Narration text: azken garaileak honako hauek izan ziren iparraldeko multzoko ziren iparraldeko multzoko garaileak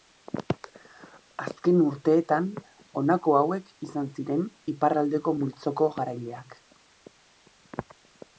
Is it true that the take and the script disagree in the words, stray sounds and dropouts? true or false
true